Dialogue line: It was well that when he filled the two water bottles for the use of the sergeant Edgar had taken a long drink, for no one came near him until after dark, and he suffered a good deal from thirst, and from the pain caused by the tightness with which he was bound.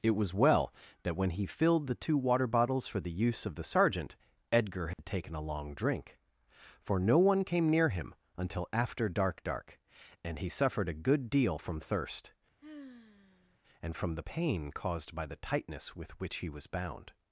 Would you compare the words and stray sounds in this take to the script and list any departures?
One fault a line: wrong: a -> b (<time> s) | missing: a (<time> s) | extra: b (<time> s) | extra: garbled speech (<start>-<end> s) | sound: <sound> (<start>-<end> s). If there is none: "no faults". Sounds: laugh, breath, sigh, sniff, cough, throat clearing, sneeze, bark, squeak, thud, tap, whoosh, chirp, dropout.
sound: dropout (4.9-5.0 s)
extra: dark (9.4 s)
sound: sigh (12.6-13.6 s)